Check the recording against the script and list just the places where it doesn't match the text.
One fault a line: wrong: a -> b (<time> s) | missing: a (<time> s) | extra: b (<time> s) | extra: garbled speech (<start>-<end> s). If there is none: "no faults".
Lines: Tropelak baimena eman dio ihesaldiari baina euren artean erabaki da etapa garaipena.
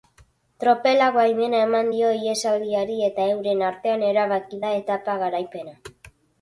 wrong: baina -> eta (3.1 s)